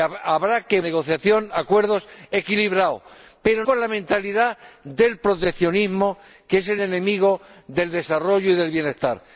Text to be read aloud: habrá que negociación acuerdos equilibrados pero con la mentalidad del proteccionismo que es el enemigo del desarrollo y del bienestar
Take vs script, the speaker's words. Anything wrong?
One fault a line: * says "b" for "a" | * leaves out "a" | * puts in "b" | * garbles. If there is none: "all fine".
all fine